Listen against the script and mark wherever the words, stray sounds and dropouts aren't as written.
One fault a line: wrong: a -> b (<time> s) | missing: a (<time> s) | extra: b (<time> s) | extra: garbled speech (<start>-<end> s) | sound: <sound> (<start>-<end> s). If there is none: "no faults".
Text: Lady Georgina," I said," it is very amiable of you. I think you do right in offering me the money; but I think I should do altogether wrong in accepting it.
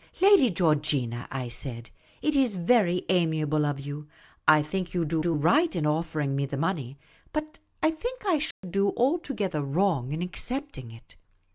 extra: do (5.2 s)
sound: dropout (8.5-8.6 s)